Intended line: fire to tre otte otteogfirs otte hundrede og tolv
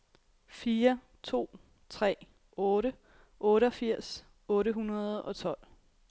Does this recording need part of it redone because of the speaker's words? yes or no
no